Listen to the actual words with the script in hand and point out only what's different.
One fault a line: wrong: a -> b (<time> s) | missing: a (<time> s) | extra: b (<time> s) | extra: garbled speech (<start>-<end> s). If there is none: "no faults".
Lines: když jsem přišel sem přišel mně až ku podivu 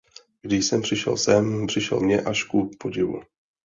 no faults